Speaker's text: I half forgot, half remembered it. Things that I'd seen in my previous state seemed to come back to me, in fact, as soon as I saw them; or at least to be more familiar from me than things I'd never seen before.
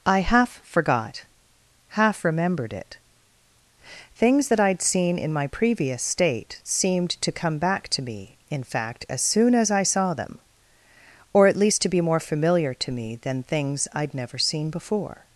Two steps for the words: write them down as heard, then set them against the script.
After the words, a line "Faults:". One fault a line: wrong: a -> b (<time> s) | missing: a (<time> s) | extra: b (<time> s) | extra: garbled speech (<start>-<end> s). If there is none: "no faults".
I half forgot, half remembered it. Things that I'd seen in my previous state seemed to come back to me, in fact, as soon as I saw them; or at least to be more familiar to me than things I'd never seen before.
Faults:
wrong: from -> to (12.7 s)